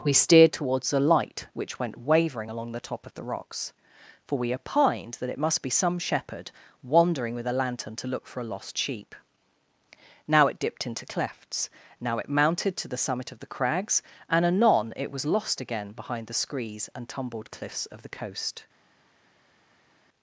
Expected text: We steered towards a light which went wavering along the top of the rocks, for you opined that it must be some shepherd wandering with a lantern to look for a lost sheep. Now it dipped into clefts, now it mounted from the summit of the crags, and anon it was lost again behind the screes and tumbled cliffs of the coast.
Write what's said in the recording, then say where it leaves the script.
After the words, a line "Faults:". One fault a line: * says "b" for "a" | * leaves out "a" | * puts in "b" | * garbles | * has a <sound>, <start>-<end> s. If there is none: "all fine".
We steered towards a light which went wavering along the top of the rocks, for we opined that it must be some shepherd wandering with a lantern to look for a lost sheep. Now it dipped into clefts, now it mounted to the summit of the crags, and anon it was lost again behind the screes and tumbled cliffs of the coast.
Faults:
* says "we" for "you"
* says "to" for "from"